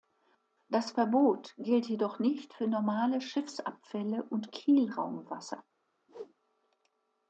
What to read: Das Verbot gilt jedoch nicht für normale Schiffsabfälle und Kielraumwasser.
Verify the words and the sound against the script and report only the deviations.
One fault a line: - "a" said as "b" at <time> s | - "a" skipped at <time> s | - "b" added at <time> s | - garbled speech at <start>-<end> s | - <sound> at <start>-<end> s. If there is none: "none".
- whoosh at 6.1-6.3 s